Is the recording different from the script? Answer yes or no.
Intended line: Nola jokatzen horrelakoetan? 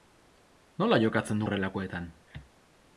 no